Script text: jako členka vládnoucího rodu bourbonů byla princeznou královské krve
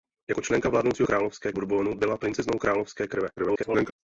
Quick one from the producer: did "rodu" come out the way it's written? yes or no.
no